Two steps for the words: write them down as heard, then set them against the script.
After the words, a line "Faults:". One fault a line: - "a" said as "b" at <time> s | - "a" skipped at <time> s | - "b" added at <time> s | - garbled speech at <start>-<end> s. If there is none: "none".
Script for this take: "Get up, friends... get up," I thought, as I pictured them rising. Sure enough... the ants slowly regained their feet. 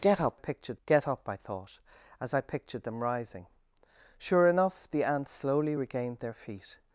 "Get up, pictured... get up," I thought, as I pictured them rising. Sure enough... the ants slowly regained their feet.
Faults:
- "friends" said as "pictured" at 0.4 s